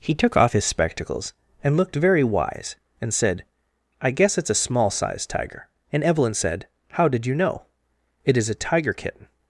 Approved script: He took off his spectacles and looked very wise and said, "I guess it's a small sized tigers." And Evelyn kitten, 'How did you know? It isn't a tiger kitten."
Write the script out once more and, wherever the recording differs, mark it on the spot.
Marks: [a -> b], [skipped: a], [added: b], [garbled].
He took off his spectacles and looked very wise and said, "I guess it's a small sized [tigers." -> tiger] And Evelyn [kitten, -> said] 'How did you know? It [isn't -> is] a tiger kitten."